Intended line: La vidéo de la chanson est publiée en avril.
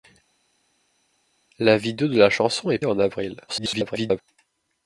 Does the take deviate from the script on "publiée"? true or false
true